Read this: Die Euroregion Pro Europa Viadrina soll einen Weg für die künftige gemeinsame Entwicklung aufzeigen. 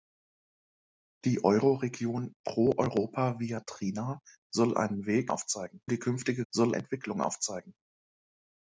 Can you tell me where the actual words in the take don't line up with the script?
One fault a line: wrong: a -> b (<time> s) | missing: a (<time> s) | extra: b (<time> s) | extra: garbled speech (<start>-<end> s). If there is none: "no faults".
wrong: für -> aufzeigen (5.3 s)
wrong: gemeinsame -> soll (6.5 s)